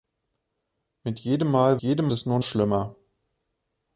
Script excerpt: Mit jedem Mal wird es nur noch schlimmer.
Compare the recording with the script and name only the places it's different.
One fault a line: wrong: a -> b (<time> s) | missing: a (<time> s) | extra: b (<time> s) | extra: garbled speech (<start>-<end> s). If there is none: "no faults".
wrong: wird -> jedem (1.8 s)
missing: noch (2.4 s)